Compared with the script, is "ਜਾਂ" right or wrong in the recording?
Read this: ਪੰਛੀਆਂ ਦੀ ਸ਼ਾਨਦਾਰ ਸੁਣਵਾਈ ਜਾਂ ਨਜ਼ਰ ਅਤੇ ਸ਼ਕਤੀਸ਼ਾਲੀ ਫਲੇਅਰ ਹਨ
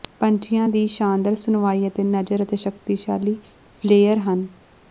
wrong